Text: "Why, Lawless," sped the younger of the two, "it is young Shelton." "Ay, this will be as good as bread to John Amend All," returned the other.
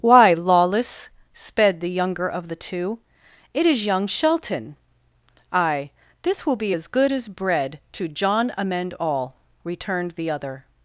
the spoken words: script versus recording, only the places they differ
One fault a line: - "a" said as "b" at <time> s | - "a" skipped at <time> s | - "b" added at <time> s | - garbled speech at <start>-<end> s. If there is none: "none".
none